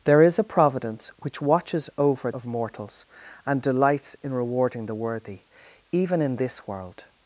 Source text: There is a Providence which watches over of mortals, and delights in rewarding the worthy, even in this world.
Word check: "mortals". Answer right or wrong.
right